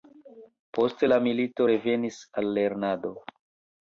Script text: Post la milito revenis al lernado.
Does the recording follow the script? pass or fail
pass